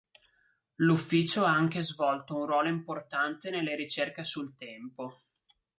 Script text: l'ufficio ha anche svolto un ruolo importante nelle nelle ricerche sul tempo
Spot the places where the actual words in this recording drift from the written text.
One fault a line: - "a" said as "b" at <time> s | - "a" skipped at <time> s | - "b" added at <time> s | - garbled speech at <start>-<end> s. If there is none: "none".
- "nelle" skipped at 3.8 s